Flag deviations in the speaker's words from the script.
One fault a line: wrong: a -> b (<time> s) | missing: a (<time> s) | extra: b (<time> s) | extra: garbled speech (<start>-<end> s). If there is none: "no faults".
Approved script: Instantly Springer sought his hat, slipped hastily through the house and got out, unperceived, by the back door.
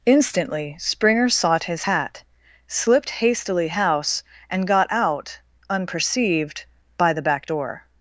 missing: through the (3.7 s)